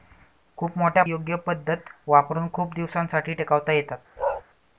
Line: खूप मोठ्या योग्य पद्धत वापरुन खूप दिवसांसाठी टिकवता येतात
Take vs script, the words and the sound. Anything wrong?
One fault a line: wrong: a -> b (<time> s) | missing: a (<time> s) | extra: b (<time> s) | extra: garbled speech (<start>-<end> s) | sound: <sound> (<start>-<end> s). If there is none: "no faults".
sound: bark (4.2-4.4 s)